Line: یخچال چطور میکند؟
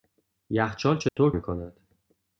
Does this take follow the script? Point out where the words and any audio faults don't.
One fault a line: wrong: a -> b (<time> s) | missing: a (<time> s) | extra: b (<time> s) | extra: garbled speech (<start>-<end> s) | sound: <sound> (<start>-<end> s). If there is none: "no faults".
sound: dropout (1.1-1.2 s)